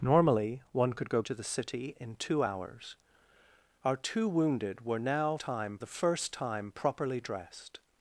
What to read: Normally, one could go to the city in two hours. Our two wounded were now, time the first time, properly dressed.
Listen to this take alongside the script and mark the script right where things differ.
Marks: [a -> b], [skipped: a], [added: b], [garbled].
Normally, one could go to the city in two hours. Our two wounded were now, time the first time, properly dressed.